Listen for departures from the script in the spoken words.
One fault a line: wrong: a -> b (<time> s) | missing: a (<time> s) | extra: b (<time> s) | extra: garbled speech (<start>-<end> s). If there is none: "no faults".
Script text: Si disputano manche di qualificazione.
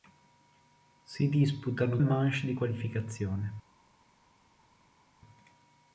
no faults